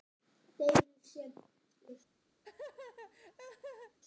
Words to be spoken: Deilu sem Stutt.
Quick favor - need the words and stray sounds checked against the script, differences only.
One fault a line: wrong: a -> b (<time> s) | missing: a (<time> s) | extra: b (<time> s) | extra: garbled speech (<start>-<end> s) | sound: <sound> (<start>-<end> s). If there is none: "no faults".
sound: laugh (2.4-4.0 s)